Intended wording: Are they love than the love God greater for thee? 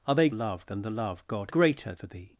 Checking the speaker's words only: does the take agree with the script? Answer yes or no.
yes